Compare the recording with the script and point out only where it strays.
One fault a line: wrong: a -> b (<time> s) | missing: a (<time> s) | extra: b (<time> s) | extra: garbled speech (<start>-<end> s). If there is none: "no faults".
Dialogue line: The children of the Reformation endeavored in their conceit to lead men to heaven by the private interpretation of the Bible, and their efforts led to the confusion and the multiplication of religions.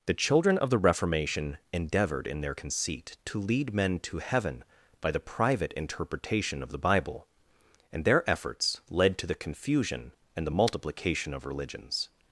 no faults